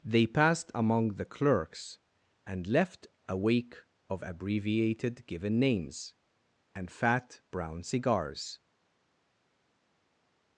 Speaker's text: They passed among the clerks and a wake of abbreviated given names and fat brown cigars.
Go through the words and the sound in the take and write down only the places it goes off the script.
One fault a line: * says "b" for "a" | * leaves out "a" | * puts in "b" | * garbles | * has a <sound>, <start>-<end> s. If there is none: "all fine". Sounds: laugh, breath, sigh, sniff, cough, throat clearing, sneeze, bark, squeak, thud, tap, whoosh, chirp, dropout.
* puts in "left"